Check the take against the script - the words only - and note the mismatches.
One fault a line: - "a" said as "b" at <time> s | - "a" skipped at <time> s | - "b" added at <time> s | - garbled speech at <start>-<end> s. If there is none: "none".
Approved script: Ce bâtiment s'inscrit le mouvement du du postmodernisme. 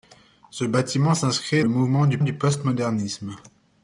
none